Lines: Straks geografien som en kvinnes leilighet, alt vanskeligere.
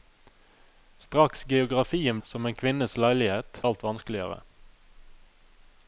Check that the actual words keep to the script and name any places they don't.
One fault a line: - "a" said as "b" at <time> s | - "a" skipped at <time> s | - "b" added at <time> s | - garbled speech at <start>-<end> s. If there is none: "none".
none